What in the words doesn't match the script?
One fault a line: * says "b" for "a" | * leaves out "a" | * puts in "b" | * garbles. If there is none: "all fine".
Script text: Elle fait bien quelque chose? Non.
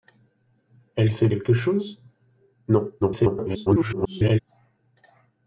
* leaves out "bien"
* garbles